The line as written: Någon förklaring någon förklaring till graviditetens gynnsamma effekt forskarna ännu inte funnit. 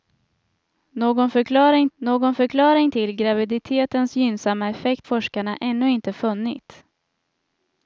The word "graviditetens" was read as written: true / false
true